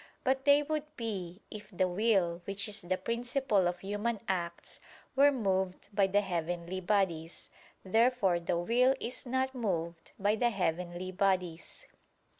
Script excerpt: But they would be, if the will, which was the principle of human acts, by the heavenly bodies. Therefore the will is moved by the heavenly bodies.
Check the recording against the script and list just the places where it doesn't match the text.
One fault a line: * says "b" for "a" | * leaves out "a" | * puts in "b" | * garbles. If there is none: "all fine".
* says "is" for "was"
* puts in "were moved"
* puts in "not"